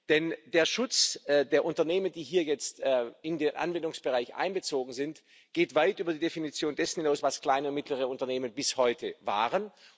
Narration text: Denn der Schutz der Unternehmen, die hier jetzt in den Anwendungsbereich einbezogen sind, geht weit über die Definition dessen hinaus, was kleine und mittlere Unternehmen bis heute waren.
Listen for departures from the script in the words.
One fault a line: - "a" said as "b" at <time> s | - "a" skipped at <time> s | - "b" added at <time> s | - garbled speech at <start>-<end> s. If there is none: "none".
none